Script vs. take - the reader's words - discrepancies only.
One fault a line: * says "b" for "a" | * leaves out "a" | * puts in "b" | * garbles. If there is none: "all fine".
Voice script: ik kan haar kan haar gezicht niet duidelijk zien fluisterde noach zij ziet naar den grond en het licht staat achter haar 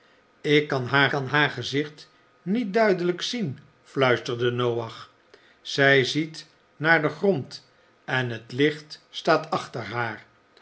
all fine